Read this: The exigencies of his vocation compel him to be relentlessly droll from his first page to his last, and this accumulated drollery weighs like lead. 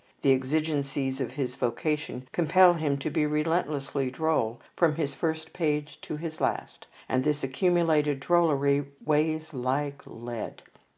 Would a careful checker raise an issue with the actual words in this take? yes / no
no